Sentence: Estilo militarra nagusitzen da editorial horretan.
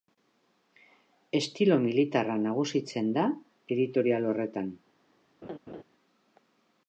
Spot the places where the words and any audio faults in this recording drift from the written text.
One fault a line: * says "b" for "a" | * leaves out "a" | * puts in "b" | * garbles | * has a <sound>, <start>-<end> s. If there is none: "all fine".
* has a laugh, 5.4-5.8 s